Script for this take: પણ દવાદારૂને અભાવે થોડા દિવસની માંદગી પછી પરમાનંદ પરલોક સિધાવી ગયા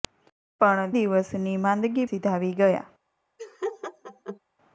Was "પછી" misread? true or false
true